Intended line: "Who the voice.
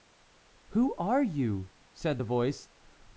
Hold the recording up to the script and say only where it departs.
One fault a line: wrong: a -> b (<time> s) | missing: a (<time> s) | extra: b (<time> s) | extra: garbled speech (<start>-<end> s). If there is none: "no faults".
extra: are you said (0.9 s)